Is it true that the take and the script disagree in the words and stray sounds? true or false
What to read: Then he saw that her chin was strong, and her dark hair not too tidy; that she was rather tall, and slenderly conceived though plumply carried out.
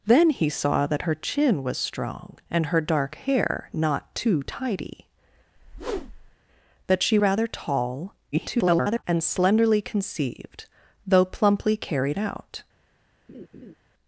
true